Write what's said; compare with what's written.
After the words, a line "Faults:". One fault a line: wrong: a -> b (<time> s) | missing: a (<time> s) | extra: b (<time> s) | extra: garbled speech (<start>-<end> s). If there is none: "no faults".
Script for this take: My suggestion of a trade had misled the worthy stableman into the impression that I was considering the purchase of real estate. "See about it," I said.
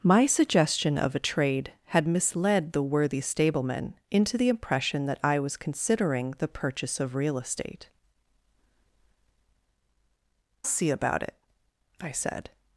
My suggestion of a trade had misled the worthy stableman into the impression that I was considering the purchase of real estate. "See about it," I said.
Faults:
no faults